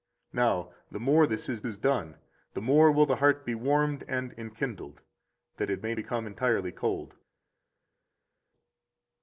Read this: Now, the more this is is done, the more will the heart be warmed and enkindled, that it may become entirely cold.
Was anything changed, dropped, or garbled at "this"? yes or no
no